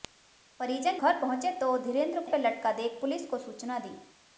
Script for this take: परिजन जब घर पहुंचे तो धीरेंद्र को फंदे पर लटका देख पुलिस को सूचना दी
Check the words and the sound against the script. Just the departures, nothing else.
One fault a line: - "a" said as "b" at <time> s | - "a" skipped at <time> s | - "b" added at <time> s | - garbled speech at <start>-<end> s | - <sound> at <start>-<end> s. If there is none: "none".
- "जब" skipped at 1.0 s
- "को फंदे" skipped at 2.2 s